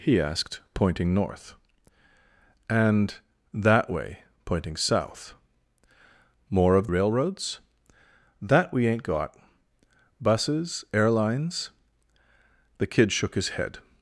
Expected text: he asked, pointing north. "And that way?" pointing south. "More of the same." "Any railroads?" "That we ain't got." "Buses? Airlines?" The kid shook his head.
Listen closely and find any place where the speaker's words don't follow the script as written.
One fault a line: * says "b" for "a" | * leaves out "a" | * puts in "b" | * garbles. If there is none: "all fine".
* leaves out "the same Any"